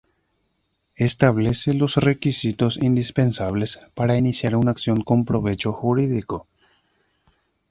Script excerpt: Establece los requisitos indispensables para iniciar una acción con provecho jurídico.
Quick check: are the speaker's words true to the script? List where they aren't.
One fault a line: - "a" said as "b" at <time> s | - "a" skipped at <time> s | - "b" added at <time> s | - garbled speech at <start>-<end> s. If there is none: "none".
none